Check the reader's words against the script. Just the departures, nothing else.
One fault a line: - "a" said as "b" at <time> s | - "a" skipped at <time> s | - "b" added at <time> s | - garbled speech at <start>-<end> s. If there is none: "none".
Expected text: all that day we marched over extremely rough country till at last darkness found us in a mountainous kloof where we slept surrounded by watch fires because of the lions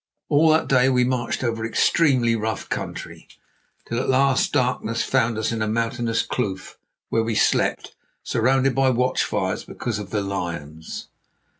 none